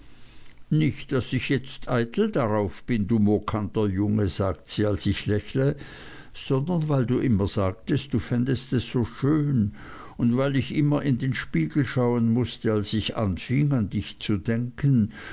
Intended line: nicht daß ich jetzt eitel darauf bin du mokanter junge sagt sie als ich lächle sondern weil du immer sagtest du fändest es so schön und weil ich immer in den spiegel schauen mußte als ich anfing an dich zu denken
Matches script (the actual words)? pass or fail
pass